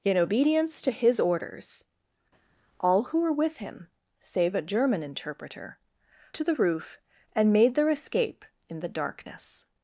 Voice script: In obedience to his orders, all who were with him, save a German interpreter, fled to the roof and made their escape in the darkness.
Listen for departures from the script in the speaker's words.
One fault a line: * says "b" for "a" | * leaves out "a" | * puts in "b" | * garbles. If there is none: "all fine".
* leaves out "fled"